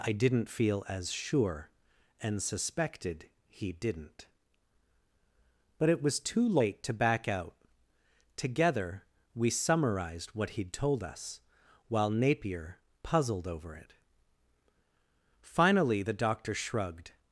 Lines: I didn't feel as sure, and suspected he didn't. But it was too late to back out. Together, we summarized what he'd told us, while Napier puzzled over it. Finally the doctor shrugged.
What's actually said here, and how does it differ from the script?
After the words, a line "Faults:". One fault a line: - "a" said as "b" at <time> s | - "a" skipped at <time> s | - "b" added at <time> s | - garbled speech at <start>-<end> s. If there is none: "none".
I didn't feel as sure, and suspected he didn't. But it was too late to back out. Together, we summarized what he'd told us, while Napier puzzled over it. Finally the doctor shrugged.
Faults:
none